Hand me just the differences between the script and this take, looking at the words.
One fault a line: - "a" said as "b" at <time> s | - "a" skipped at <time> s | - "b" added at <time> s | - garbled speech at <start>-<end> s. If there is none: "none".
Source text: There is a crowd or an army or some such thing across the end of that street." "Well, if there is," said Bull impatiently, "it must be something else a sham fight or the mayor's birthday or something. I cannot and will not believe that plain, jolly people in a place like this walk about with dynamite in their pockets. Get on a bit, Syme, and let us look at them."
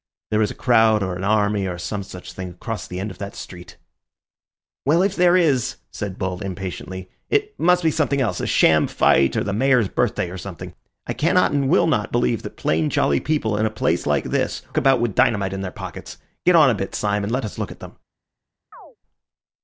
- "walk" skipped at 14.6 s